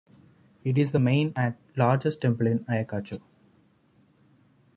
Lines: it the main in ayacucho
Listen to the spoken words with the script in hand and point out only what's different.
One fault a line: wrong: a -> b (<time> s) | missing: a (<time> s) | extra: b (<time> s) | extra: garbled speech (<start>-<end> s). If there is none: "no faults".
extra: is (0.8 s)
extra: and largest temple (1.3 s)